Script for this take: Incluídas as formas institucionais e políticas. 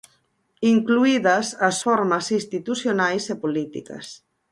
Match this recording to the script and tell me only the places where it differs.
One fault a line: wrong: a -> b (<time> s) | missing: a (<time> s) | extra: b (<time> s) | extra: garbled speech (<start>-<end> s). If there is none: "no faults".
no faults